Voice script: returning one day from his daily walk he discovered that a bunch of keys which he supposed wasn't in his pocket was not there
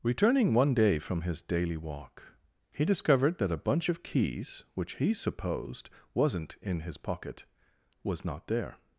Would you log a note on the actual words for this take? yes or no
no